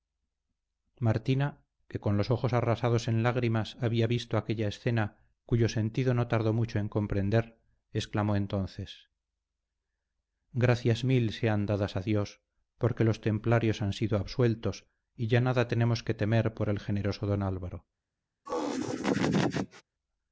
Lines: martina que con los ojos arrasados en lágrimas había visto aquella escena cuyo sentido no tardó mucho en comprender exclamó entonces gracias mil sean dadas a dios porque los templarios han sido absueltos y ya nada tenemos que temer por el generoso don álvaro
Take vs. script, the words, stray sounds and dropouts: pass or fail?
fail